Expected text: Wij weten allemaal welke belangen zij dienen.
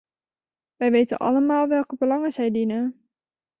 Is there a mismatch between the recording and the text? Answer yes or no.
no